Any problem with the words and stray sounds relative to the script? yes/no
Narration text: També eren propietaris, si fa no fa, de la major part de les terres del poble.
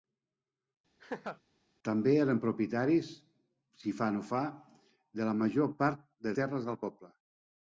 yes